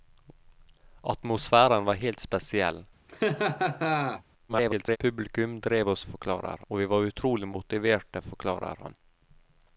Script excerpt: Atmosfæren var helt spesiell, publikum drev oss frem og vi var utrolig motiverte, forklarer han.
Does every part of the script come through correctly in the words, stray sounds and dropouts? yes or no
no